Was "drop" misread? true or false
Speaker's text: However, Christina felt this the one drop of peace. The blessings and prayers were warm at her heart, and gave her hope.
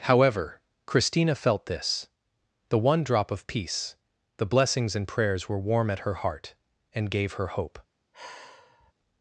false